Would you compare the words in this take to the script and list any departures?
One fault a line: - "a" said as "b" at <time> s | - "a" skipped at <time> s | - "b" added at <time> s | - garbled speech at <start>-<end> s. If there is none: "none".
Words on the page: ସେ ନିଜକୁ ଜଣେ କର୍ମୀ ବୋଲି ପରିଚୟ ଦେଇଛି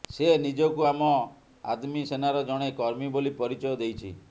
- "ଆମ ଆଦମୀ ସେନାର" added at 0.9 s